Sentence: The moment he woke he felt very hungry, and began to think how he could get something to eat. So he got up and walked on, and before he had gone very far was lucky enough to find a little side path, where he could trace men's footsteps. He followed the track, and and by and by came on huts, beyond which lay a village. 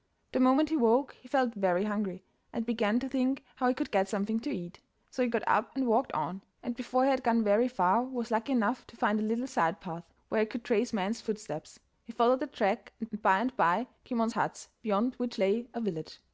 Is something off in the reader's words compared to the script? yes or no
no